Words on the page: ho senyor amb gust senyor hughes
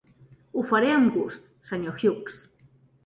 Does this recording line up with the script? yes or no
no